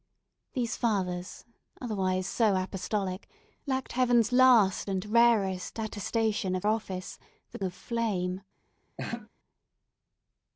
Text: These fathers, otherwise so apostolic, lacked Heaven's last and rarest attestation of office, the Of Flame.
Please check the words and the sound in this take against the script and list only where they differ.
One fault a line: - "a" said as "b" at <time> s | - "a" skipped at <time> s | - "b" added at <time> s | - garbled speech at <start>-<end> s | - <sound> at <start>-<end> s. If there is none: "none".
- laugh at 9.0-9.3 s